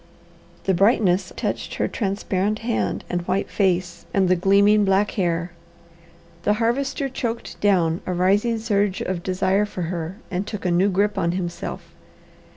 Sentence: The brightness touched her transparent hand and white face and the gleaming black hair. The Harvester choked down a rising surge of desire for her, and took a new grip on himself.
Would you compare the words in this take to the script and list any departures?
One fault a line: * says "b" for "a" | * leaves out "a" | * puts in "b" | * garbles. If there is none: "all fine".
all fine